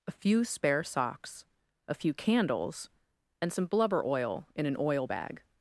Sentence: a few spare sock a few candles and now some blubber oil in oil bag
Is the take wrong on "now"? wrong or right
wrong